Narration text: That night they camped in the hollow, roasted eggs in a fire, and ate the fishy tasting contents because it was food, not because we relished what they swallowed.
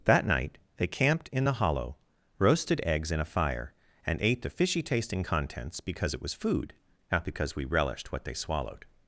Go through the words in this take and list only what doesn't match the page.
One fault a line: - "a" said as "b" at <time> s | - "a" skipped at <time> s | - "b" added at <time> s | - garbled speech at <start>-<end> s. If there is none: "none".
none